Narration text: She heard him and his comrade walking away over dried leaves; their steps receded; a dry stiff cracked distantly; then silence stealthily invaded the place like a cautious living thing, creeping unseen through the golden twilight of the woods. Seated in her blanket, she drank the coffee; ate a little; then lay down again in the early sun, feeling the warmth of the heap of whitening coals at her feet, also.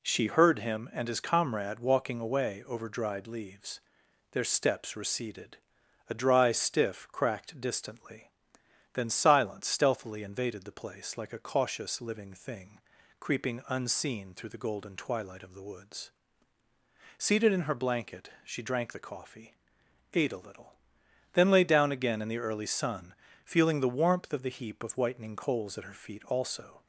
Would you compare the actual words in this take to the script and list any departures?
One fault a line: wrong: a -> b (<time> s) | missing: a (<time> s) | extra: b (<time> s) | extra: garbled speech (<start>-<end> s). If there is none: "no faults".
no faults